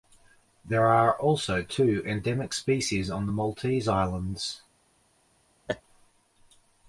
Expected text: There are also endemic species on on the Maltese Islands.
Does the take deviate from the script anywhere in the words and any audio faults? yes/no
yes